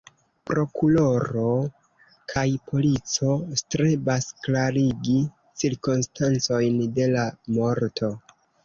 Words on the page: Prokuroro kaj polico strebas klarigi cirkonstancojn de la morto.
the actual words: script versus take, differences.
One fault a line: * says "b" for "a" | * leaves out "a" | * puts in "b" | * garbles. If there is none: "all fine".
all fine